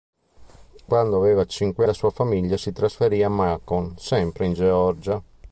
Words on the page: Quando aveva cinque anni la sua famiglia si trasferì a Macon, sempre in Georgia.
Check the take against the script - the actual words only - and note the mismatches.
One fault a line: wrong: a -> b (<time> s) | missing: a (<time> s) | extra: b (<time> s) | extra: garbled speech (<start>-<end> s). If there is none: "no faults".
missing: anni (1.9 s)